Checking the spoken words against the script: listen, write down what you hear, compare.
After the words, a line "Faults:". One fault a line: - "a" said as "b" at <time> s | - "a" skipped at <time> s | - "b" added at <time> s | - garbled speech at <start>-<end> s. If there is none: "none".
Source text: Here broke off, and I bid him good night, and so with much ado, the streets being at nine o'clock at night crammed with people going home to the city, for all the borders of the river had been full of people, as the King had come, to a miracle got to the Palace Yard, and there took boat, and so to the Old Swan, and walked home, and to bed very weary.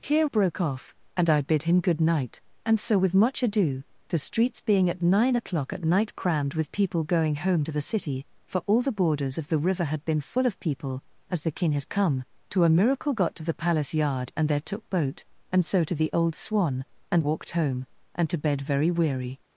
Here broke off, and I bid him good night, and so with much ado, the streets being at nine o'clock at night crammed with people going home to the city, for all the borders of the river had been full of people, as the King had come, to a miracle got to the Palace Yard, and there took boat, and so to the Old Swan, and walked home, and to bed very weary.
Faults:
none